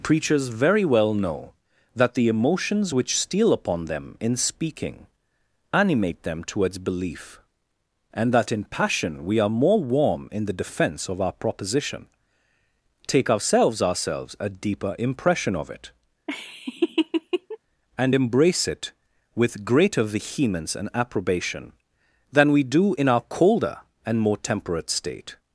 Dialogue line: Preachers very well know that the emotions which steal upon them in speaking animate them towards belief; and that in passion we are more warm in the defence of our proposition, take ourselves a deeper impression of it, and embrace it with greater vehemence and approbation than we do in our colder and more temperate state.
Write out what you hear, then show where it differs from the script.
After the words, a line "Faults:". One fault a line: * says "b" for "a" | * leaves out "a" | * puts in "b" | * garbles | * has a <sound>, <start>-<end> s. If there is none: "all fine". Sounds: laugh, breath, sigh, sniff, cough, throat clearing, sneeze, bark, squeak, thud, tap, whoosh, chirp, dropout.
Preachers very well know that the emotions which steal upon them in speaking animate them towards belief; and that in passion we are more warm in the defence of our proposition, take ourselves ourselves a deeper impression of it, and embrace it with greater vehemence and approbation than we do in our colder and more temperate state.
Faults:
* puts in "ourselves"
* has a laugh, 16.3-17.6 s